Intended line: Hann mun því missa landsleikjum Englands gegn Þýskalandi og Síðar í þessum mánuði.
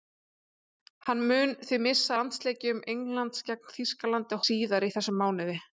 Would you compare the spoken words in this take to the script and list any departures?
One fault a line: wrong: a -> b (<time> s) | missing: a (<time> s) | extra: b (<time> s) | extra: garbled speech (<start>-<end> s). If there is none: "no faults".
no faults